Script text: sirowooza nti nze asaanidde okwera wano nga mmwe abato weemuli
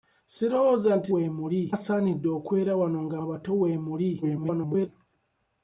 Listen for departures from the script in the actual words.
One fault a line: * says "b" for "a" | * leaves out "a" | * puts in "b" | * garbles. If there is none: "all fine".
* says "weemuli" for "nze"
* leaves out "mmwe"
* garbles